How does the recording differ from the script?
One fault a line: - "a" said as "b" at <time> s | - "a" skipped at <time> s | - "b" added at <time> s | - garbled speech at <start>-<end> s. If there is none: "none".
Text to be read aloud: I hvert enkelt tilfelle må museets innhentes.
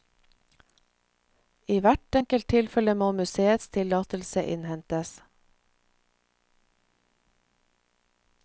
- "tillatelse" added at 3.8 s